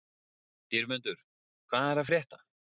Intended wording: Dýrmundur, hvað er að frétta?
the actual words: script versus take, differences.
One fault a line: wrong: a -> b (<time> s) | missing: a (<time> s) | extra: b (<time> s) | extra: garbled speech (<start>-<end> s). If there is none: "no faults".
no faults